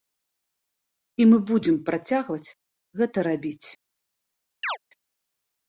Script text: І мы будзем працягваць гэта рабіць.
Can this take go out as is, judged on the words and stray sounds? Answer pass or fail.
fail